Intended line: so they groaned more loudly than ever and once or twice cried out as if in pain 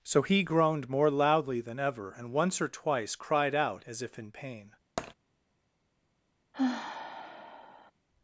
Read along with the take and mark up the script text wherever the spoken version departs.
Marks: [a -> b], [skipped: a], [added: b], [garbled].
so [they -> he] groaned more loudly than ever and once or twice cried out as if in pain